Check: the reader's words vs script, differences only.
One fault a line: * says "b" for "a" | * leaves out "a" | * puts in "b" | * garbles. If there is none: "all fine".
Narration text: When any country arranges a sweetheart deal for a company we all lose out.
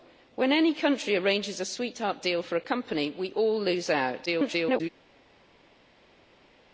* garbles